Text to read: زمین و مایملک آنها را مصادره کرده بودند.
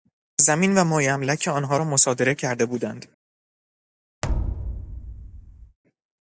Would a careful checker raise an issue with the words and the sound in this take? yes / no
yes